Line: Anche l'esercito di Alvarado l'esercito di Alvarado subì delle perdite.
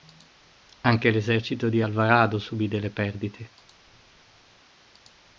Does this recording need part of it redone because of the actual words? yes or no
yes